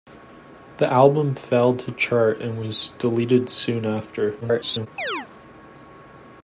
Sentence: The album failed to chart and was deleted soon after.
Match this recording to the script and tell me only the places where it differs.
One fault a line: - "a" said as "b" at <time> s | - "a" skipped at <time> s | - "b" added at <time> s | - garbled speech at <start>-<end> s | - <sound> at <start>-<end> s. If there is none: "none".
- garbled speech at 4.4-4.9 s
- chirp at 5.0-5.3 s